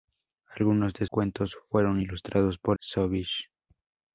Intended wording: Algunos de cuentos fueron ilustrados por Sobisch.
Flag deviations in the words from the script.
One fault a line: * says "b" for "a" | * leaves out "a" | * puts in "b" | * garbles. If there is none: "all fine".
all fine